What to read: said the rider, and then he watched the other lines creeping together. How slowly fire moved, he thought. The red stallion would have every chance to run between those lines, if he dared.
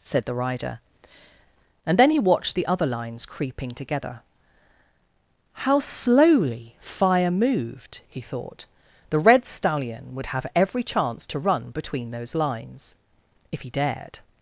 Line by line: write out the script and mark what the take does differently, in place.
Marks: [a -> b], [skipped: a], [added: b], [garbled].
said the rider, and then he watched the other lines creeping together. How slowly fire moved, he thought. The red stallion would have every chance to run between those lines, if he dared.